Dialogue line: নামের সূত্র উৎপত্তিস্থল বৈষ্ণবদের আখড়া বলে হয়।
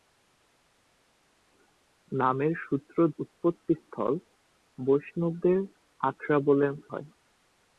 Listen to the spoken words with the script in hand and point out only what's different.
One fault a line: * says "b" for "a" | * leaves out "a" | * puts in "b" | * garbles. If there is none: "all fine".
all fine